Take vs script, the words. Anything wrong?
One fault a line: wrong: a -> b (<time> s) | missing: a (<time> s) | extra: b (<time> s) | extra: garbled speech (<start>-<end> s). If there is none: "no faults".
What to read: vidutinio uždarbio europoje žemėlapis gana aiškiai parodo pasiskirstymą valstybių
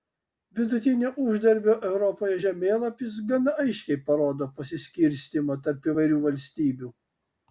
extra: tarp įvairių (5.7 s)